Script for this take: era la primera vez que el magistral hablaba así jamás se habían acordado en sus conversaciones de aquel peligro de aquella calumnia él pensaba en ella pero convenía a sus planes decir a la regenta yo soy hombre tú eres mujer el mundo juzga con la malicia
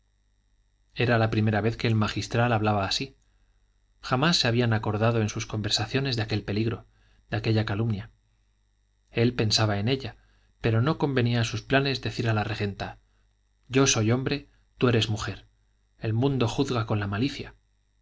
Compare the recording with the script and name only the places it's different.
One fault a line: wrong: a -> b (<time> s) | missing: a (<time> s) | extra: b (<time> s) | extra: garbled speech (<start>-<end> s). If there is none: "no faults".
extra: no (10.8 s)